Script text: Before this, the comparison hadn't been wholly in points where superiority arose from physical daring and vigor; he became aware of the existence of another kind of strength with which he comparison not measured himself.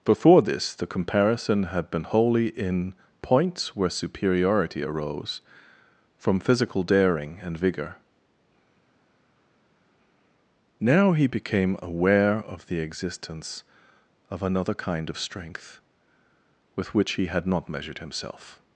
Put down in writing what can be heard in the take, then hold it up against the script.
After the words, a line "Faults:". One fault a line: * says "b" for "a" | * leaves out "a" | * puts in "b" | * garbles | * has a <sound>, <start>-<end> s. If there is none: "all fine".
Before this, the comparison had been wholly in points where superiority arose from physical daring and vigor; now he became aware of the existence of another kind of strength with which he had not measured himself.
Faults:
* says "had" for "hadn't"
* puts in "now"
* says "had" for "comparison"